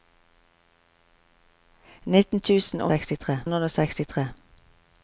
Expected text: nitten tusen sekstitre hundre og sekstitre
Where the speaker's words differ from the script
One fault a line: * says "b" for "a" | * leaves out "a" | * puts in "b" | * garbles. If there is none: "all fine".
all fine